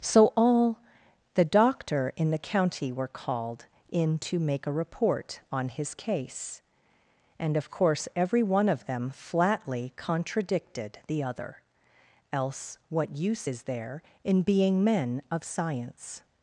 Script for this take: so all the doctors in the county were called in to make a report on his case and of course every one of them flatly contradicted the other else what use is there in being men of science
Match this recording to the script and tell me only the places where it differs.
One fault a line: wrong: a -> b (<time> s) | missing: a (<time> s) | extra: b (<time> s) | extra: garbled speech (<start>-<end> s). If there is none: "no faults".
wrong: doctors -> doctor (1.4 s)